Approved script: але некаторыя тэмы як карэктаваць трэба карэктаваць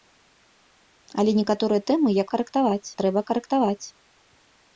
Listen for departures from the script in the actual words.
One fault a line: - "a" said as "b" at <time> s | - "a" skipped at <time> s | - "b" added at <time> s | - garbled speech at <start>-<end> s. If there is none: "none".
none